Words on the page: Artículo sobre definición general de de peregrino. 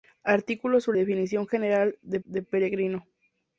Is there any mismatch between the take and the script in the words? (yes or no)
no